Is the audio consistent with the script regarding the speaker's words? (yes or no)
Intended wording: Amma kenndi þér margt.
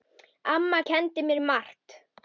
no